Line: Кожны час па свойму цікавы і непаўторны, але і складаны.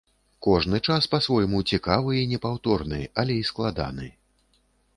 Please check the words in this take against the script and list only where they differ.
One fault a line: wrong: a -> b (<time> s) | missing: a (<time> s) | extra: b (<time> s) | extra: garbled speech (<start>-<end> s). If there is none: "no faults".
no faults